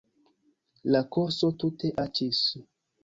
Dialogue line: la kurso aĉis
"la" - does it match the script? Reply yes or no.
yes